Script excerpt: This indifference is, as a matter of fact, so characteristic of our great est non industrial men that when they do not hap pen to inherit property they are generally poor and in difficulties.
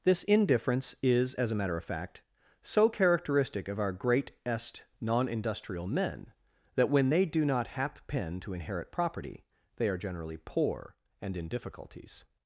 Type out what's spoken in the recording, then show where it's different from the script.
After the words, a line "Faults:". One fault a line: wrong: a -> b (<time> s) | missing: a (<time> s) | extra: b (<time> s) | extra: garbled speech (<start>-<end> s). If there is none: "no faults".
This indifference is, as a matter of fact, so characteristic of our great est non industrial men that when they do not hap pen to inherit property they are generally poor and in difficulties.
Faults:
no faults